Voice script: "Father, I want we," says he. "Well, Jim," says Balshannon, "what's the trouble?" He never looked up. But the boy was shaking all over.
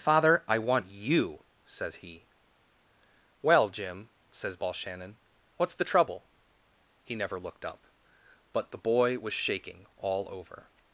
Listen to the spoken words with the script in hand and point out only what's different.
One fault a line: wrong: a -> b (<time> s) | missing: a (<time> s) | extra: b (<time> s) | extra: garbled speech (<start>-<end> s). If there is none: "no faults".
wrong: we -> you (0.9 s)